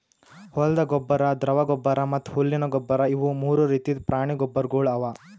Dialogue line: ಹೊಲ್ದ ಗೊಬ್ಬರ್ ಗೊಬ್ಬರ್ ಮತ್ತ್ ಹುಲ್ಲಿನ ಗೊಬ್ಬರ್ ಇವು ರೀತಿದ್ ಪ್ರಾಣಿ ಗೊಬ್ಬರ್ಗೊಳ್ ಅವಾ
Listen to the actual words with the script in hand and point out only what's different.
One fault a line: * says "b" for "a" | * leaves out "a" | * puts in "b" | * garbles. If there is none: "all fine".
* puts in "ದ್ರವ"
* puts in "ಮೂರು"